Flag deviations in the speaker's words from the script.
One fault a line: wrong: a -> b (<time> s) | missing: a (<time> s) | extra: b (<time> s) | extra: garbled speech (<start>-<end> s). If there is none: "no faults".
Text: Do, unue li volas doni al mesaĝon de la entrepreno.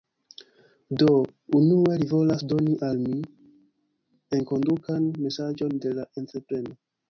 extra: mi enkondukan (3.0 s)